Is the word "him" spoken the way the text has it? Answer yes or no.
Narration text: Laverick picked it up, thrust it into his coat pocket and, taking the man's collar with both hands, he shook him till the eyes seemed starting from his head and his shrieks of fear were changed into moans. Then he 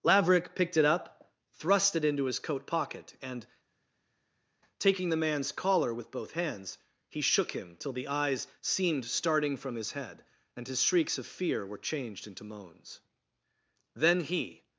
yes